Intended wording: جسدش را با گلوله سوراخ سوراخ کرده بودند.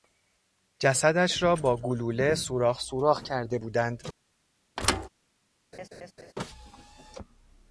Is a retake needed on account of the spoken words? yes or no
no